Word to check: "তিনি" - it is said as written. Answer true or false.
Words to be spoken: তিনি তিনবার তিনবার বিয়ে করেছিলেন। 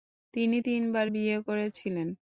true